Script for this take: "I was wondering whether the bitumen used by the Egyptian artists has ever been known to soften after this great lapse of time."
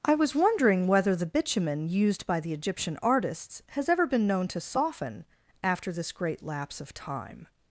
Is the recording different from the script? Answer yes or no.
no